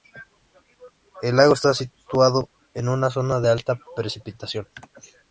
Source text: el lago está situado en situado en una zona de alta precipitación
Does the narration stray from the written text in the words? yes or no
yes